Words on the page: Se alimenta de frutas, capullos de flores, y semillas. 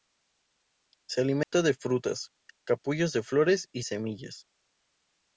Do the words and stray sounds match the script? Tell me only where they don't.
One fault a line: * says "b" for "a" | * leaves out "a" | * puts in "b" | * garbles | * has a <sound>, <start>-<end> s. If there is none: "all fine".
* has a dropout, 1.4-1.5 s